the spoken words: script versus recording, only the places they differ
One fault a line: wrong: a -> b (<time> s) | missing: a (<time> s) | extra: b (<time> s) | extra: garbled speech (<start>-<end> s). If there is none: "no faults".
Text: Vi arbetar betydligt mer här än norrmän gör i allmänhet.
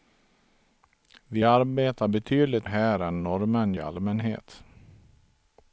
missing: mer (2.7 s)
missing: gör (3.7 s)